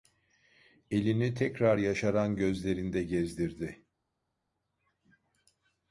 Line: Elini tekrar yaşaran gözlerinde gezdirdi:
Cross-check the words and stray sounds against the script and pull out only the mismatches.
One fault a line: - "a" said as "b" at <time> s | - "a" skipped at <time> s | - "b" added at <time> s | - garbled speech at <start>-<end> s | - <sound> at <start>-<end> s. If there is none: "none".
none